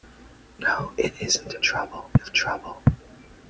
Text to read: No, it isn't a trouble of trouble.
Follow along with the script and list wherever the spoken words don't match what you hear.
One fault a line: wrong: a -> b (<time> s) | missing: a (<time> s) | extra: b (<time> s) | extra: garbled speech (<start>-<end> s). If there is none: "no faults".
no faults